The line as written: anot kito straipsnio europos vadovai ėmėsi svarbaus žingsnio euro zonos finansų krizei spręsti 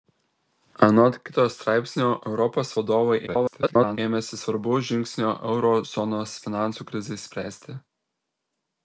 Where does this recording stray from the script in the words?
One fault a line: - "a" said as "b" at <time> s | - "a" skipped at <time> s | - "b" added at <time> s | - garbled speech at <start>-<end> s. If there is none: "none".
- garbled speech at 3.3-4.0 s